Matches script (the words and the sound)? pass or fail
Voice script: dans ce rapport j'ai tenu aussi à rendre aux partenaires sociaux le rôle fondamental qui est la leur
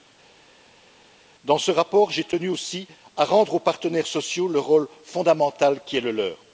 fail